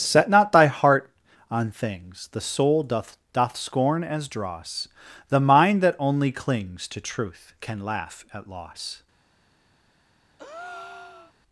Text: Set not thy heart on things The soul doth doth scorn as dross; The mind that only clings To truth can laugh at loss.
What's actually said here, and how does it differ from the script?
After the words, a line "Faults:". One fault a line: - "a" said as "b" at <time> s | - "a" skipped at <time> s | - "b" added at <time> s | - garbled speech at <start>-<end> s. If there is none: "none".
Set not thy heart on things The soul doth doth scorn as dross; The mind that only clings To truth can laugh at loss.
Faults:
none